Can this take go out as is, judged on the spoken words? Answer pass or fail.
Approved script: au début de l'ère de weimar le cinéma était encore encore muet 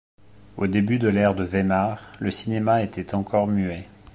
fail